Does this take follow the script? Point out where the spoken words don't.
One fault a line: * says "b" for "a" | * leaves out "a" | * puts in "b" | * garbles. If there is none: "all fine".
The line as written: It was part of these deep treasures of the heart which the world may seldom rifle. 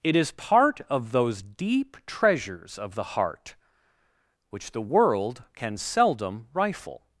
* says "is" for "was"
* says "those" for "these"
* says "can" for "may"